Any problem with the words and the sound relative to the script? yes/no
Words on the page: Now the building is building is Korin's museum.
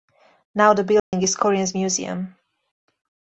yes